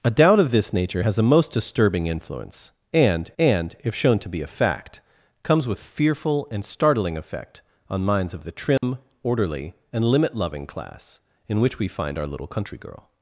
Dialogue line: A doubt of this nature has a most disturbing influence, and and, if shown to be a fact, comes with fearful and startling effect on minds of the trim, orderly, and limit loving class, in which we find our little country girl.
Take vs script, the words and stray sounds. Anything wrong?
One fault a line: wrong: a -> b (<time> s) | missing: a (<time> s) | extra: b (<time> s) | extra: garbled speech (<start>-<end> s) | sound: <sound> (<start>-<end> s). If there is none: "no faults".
sound: dropout (8.8-8.8 s)